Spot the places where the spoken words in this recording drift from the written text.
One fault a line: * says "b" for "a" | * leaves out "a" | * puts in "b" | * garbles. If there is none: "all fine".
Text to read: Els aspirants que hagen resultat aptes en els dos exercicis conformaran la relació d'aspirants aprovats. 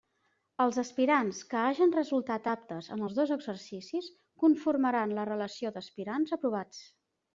all fine